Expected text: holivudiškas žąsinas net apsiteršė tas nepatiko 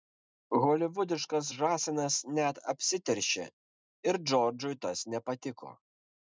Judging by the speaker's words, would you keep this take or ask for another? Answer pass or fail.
fail